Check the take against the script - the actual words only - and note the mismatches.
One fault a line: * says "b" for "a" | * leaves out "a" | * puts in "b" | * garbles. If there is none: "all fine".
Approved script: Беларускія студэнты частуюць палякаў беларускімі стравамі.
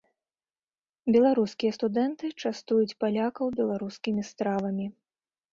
all fine